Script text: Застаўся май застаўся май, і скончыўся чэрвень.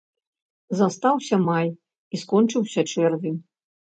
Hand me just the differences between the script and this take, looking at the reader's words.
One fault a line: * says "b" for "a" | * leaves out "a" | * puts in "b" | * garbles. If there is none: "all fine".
* leaves out "застаўся май"